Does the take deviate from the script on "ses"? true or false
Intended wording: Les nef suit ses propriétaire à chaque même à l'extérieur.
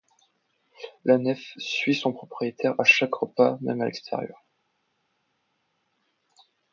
true